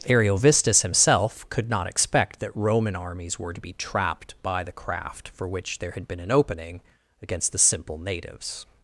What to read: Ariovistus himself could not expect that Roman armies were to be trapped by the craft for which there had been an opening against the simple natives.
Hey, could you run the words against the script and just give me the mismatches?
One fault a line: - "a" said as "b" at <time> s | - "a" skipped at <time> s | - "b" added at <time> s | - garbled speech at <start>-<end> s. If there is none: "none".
none